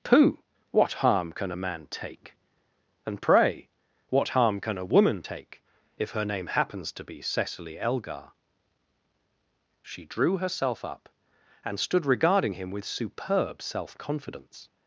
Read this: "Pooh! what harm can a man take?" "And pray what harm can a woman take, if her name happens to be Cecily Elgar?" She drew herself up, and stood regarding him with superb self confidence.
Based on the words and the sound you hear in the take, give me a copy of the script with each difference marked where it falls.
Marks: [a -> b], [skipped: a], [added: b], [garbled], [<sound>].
"Pooh! what harm can a man take?" "And pray what harm can a woman take, if her name happens to be Cecily Elgar?" She drew herself up, and stood regarding him with superb self confidence.